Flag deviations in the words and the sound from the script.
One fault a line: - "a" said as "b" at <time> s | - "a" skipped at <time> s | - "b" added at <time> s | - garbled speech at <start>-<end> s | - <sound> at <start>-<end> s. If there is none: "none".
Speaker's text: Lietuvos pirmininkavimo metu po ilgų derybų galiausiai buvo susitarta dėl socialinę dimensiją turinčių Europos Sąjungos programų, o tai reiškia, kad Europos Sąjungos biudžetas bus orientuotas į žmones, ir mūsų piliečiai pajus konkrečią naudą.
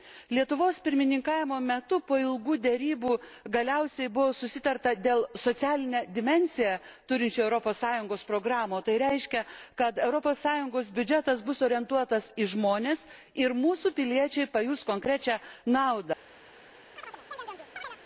- chirp at 17.0-18.0 s